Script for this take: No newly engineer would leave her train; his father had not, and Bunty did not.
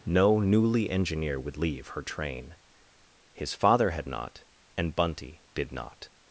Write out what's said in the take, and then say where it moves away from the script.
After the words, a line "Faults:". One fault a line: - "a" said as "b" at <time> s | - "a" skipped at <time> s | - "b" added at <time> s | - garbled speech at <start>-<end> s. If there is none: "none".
No newly engineer would leave her train; his father had not, and Bunty did not.
Faults:
none